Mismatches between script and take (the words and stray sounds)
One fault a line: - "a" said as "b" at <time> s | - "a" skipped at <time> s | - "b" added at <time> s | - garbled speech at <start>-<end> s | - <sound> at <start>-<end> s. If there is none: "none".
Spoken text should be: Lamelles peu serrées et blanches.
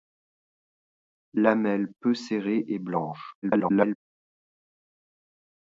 - garbled speech at 3.4-4.0 s